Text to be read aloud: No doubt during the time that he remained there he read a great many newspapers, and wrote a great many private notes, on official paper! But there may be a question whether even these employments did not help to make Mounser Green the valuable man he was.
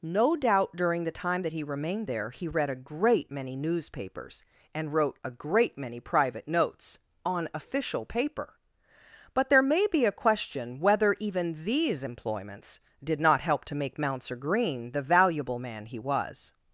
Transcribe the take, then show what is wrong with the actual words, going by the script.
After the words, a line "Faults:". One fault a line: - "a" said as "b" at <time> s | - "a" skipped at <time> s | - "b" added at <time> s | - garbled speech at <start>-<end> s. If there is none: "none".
No doubt during the time that he remained there he read a great many newspapers, and wrote a great many private notes, on official paper! But there may be a question whether even these employments did not help to make Mounser Green the valuable man he was.
Faults:
none